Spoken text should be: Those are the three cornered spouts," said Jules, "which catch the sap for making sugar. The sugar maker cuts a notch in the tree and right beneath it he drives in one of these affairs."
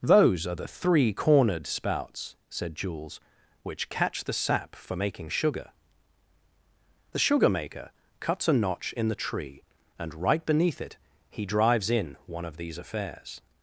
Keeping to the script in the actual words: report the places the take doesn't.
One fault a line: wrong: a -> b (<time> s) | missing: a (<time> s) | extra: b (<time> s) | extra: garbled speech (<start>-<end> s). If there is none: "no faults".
no faults